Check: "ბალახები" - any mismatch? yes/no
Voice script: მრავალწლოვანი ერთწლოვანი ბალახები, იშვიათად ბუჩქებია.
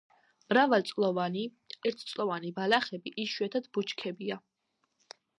no